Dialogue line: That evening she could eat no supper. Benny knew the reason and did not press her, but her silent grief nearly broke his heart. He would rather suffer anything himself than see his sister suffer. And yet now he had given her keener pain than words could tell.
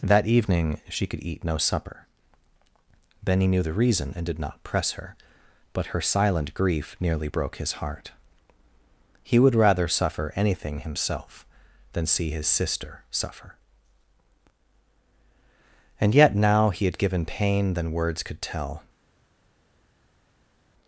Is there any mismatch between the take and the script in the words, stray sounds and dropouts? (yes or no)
yes